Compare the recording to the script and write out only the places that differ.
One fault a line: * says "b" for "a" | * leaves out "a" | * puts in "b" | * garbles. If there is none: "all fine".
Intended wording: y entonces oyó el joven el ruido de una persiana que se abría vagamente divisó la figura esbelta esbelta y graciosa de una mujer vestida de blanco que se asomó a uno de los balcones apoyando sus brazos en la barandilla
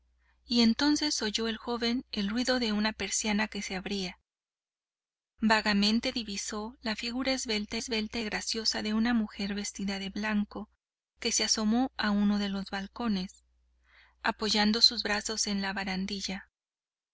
all fine